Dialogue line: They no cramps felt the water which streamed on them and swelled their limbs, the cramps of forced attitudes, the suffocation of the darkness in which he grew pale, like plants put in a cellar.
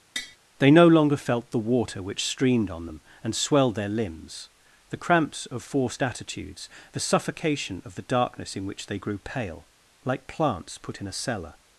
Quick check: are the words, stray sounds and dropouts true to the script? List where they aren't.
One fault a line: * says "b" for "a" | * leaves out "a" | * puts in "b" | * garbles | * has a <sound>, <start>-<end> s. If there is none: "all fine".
* has a tap, 0.2-0.4 s
* says "longer" for "cramps"
* says "they" for "he"